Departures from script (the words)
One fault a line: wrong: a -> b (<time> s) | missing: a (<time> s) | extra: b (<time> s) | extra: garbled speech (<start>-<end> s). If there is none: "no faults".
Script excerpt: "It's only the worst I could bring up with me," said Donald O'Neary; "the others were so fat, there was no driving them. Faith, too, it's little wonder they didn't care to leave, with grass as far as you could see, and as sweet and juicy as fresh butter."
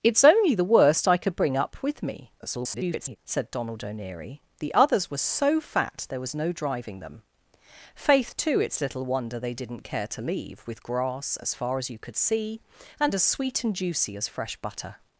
extra: garbled speech (2.4-3.2 s)